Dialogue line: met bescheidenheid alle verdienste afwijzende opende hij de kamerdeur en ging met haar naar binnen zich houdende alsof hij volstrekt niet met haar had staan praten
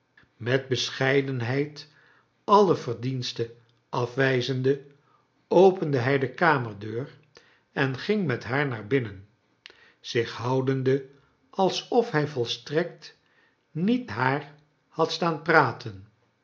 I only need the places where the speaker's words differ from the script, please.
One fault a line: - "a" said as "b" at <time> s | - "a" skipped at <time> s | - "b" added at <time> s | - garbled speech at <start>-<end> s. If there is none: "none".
- "met" skipped at 14.1 s